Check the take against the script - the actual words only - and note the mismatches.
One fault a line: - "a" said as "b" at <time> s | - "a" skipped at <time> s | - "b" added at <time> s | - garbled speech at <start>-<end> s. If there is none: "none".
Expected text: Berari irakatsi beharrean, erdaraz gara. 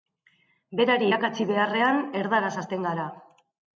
- "hasten" added at 2.6 s